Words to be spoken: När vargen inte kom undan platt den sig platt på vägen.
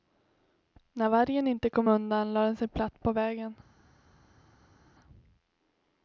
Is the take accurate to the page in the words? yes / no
no